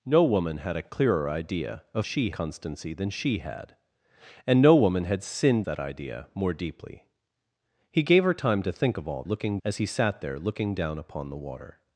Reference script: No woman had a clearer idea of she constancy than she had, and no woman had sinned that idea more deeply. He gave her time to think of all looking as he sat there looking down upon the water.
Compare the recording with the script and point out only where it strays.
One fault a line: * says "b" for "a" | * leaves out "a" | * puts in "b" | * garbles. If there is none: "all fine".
all fine